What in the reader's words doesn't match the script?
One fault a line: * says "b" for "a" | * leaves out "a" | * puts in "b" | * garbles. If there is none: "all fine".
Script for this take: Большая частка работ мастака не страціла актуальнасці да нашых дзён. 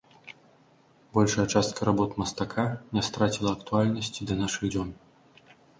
all fine